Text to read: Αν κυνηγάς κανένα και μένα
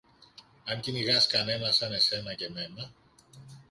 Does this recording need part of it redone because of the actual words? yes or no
yes